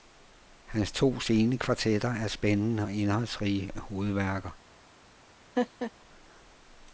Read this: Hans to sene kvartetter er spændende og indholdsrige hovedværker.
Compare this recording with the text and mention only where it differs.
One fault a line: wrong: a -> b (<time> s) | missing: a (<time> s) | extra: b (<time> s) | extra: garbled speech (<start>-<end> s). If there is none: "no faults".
no faults